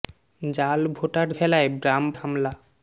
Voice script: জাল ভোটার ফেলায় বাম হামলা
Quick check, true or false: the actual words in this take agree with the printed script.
true